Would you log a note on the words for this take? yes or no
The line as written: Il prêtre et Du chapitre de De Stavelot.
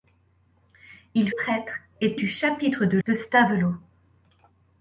no